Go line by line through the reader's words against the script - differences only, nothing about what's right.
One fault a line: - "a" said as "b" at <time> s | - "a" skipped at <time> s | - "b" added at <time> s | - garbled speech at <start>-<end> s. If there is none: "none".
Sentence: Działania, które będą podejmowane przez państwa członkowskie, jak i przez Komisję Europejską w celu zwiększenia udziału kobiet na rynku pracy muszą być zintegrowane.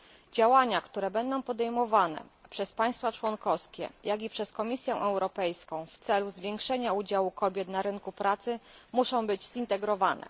none